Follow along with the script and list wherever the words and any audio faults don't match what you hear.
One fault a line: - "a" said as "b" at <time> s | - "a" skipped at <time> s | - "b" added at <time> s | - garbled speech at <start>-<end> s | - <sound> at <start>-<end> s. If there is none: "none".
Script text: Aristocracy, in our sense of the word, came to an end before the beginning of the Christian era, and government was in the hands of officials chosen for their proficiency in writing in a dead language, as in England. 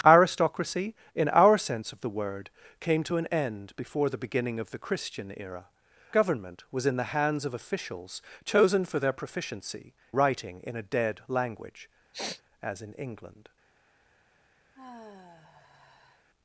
- "and" skipped at 5.7 s
- "in" skipped at 9.9 s
- sniff at 12.1-12.4 s
- sigh at 14.7-16.3 s